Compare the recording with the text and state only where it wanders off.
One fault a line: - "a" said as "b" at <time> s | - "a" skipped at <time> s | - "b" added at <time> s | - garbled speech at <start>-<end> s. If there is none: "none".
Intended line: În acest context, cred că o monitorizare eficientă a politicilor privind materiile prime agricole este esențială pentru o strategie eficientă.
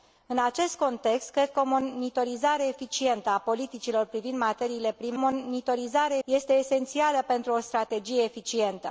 - "agricole" said as "monitorizare" at 5.2 s